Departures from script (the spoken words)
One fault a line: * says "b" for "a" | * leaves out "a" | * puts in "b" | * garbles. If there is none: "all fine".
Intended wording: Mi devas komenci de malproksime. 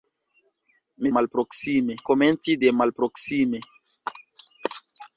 * says "malproksime" for "devas"